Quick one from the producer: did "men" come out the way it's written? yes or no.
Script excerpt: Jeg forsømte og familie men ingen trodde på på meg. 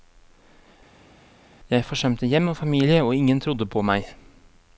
no